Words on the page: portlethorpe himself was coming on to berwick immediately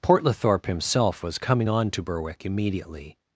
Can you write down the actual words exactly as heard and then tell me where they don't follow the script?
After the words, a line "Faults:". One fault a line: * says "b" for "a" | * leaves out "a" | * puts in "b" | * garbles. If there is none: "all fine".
portlethorpe himself was coming on to berwick immediately
Faults:
all fine